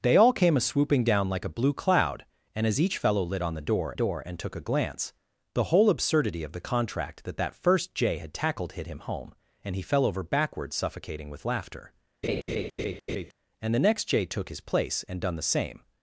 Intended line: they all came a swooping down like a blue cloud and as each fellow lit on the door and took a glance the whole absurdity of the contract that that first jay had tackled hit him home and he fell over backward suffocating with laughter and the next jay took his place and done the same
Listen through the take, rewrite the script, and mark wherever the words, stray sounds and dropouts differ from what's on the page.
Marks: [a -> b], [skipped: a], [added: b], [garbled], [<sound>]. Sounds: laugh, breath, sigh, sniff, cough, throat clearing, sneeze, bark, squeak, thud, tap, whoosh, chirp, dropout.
they all came a swooping down like a blue cloud and as each fellow lit on the door [added: door] and took a glance the whole absurdity of the contract that that first jay had tackled hit him home and he fell over backward suffocating with laughter [laugh] and the next jay took his place and done the same